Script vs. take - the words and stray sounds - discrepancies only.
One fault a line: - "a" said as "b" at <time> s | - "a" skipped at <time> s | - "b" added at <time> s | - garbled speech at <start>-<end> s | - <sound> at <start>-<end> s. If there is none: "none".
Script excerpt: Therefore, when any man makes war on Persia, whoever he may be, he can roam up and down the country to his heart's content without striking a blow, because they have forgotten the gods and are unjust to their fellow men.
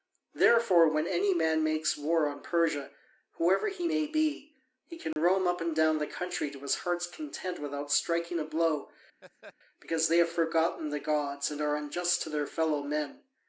- dropout at 5.1-5.2 s
- laugh at 9.2-9.5 s